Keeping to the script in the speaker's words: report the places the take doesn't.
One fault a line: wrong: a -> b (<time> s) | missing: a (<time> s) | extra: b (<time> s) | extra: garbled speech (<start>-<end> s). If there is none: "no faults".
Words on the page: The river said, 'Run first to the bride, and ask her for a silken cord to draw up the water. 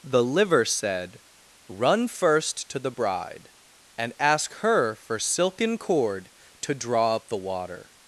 wrong: river -> liver (0.2 s)
missing: a (5.2 s)